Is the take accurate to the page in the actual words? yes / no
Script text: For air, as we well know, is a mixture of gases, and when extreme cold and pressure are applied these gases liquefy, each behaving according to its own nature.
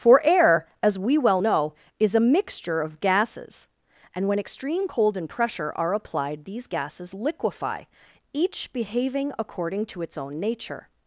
yes